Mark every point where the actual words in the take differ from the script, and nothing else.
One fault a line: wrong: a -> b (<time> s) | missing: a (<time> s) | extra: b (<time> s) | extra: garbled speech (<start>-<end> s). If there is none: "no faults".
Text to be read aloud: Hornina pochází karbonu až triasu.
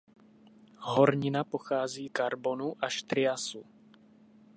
no faults